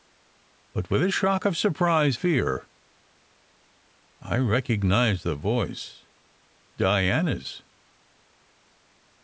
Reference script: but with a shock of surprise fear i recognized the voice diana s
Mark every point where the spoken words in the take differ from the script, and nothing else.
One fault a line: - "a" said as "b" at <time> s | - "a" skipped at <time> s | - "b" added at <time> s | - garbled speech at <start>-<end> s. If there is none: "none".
none